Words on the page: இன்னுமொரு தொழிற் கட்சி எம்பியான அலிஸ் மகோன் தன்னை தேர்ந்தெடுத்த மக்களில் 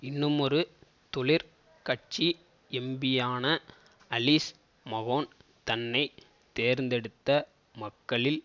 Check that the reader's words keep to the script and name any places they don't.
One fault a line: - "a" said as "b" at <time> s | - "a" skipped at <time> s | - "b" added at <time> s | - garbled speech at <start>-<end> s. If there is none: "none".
none